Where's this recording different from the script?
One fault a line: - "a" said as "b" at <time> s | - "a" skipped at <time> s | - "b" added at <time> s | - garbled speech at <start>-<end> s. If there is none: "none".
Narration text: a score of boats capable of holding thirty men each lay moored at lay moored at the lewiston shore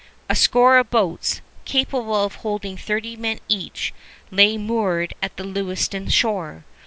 - "lay moored at" skipped at 5.4 s